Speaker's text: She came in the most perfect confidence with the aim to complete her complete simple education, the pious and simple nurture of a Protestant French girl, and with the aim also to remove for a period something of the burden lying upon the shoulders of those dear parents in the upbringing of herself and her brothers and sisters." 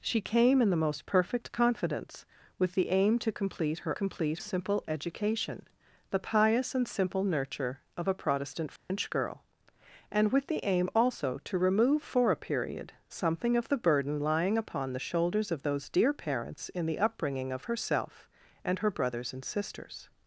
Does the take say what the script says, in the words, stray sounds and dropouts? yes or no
no